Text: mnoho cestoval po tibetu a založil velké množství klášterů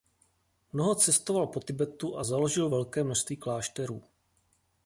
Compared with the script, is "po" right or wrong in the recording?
right